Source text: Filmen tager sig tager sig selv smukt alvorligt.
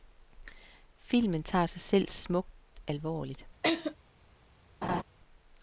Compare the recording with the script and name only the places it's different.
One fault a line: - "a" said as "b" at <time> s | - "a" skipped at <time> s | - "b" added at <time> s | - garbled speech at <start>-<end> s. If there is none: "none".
- "tager sig" skipped at 1.8 s